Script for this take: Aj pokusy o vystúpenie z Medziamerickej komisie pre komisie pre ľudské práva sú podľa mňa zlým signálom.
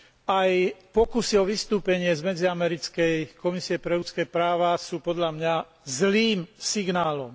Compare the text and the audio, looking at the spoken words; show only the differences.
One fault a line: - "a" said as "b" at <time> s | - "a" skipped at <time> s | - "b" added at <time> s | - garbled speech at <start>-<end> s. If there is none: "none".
- "komisie pre" skipped at 4.0 s